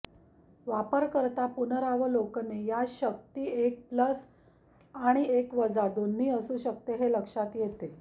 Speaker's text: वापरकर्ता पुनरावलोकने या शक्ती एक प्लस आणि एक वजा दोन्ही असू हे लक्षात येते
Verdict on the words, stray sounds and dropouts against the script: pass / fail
fail